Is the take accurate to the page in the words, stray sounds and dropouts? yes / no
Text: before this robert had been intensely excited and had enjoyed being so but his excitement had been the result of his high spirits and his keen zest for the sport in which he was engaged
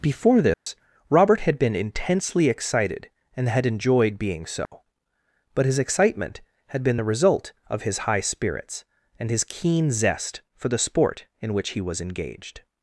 no